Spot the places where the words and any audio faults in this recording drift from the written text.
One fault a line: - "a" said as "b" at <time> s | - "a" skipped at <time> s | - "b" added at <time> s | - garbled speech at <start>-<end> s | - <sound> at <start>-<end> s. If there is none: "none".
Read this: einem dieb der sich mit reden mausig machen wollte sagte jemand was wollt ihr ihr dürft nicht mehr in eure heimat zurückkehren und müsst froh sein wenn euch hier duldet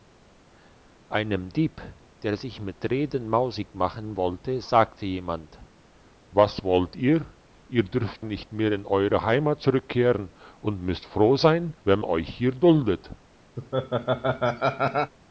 - laugh at 13.6-15.1 s